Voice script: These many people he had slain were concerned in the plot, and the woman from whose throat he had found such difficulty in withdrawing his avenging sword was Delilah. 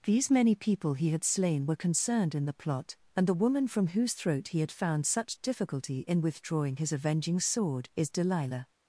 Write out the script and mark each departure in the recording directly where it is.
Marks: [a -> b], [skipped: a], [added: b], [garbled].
These many people he had slain were concerned in the plot, and the woman from whose throat he had found such difficulty in withdrawing his avenging sword [was -> is] Delilah.